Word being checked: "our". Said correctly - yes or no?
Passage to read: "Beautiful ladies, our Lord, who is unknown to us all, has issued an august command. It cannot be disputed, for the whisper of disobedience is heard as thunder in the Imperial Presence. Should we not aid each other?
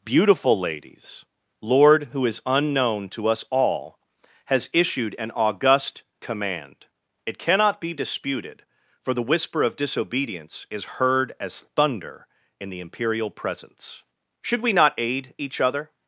no